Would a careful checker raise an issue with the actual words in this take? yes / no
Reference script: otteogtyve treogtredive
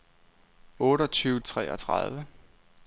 no